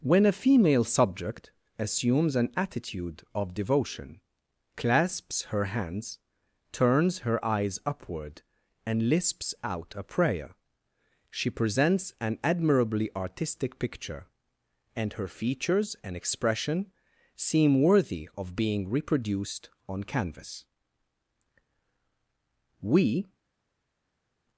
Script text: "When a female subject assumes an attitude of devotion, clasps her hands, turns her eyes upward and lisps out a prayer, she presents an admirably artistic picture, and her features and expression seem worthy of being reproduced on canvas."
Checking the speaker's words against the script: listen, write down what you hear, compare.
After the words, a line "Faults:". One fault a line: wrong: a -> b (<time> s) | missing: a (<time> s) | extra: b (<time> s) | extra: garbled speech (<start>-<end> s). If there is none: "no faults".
"When a female subject assumes an attitude of devotion, clasps her hands, turns her eyes upward and lisps out a prayer, she presents an admirably artistic picture, and her features and expression seem worthy of being reproduced on canvas." We
Faults:
extra: We (22.8 s)